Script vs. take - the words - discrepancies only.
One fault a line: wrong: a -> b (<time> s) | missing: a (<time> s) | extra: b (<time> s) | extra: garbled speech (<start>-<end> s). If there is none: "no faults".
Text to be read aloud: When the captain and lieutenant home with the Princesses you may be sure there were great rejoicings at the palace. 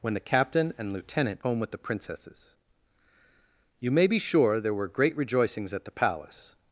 no faults